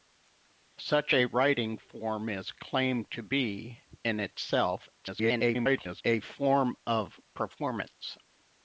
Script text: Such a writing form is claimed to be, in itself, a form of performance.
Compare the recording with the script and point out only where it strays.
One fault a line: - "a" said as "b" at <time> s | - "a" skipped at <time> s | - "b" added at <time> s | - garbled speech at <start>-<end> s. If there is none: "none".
- garbled speech at 5.0-6.0 s